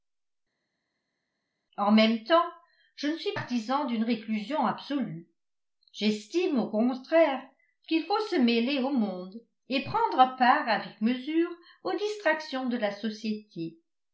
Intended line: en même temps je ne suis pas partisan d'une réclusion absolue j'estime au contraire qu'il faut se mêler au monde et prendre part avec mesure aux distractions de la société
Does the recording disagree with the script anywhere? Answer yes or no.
yes